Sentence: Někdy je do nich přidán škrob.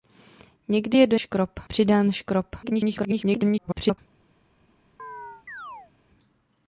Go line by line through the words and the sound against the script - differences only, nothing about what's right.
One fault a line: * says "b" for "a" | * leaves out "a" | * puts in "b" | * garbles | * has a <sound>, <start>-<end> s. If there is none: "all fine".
* says "škrob" for "nich"
* garbles
* has a chirp, 5.0-5.9 s